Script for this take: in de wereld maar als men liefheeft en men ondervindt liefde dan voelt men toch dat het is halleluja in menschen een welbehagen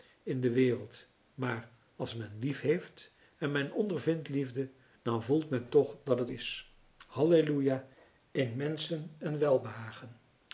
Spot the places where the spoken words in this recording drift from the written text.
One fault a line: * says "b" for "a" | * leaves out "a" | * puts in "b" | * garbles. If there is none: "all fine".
all fine